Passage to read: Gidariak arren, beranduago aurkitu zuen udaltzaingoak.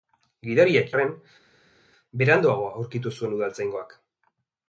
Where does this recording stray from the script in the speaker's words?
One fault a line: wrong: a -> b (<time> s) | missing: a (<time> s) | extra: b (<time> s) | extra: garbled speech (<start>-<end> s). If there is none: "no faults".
no faults